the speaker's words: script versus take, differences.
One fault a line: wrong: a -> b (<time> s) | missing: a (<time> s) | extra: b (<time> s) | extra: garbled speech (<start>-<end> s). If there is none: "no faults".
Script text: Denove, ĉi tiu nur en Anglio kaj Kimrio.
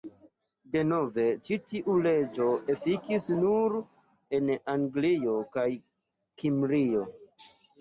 extra: leĝo efikis (2.1 s)